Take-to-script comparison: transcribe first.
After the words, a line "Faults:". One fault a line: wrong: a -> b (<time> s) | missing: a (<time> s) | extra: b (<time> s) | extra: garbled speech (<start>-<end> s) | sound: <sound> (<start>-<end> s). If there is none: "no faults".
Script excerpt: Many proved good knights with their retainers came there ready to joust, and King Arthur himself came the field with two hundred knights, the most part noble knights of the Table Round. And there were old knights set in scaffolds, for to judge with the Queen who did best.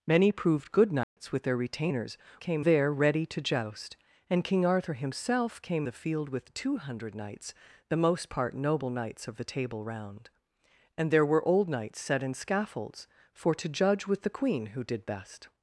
Many proved good knights with their retainers came there ready to joust, and King Arthur himself came the field with two hundred knights, the most part noble knights of the Table Round. And there were old knights set in scaffolds, for to judge with the Queen who did best.
Faults:
sound: dropout (1.0-1.2 s)